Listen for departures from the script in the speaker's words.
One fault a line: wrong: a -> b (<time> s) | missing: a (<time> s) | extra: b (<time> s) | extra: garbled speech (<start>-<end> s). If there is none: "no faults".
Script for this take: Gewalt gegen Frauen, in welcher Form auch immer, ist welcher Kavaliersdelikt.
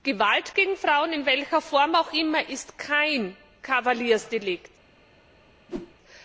wrong: welcher -> kein (2.8 s)